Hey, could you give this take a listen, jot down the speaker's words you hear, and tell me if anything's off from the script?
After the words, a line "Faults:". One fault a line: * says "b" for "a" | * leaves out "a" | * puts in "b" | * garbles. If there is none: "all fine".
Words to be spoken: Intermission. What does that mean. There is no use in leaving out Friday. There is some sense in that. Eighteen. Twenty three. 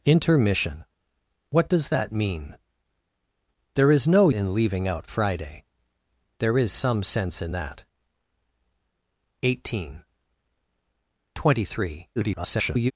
Intermission. What does that mean. There is no in leaving out Friday. There is some sense in that. Eighteen. Twenty three. [garbled]
Faults:
* leaves out "use"
* garbles